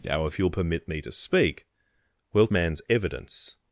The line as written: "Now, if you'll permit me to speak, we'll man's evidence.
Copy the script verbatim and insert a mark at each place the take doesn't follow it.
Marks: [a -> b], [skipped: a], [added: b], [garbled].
"Now, if you'll permit me to speak, we'll man's evidence.